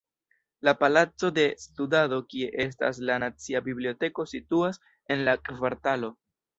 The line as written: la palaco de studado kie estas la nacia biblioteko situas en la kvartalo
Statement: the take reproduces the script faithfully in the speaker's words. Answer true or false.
true